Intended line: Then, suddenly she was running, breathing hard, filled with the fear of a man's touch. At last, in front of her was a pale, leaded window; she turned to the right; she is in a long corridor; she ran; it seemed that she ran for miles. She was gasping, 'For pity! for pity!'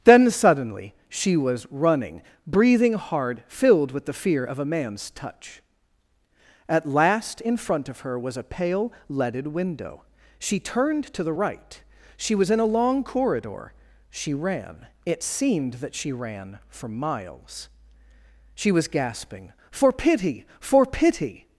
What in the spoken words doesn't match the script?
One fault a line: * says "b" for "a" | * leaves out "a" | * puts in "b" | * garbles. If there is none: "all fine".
* says "was" for "is"